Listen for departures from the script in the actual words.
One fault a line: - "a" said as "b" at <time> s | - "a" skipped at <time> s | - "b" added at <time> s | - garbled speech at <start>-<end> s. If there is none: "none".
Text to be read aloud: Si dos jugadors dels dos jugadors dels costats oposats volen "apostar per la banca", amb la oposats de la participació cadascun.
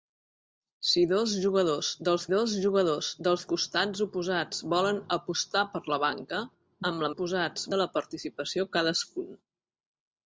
none